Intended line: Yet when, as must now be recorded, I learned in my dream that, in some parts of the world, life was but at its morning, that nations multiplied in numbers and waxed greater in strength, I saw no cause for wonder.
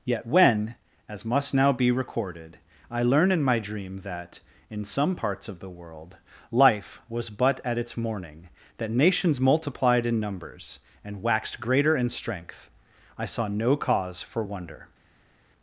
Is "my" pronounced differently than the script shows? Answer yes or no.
no